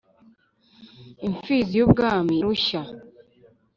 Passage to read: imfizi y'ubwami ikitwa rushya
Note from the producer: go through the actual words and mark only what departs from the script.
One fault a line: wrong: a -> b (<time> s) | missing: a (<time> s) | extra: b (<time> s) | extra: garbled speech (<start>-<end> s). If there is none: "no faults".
missing: ikitwa (2.4 s)